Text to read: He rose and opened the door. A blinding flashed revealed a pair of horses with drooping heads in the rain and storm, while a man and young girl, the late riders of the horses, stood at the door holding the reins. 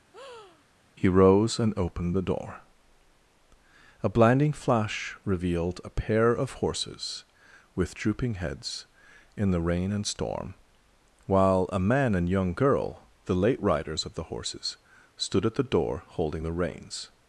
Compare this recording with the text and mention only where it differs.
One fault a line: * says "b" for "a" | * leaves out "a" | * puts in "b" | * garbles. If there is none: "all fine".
* says "flash" for "flashed"